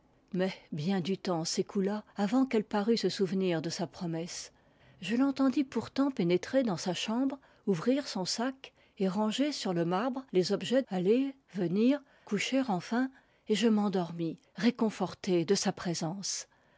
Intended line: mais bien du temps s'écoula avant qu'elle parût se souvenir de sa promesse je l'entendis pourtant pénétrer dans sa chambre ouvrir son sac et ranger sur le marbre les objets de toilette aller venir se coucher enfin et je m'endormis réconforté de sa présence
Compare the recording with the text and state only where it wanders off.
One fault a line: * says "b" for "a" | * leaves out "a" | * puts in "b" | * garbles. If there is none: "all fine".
* leaves out "de toilette"
* leaves out "se"